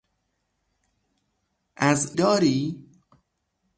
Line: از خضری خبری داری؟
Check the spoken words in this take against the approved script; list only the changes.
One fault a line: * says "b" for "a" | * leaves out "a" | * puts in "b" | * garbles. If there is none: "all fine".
* leaves out "خضری خبری"